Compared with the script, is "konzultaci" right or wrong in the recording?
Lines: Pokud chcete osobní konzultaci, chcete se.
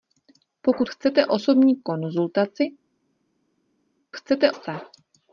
right